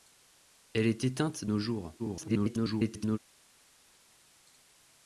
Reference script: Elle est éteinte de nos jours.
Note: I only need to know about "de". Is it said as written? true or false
false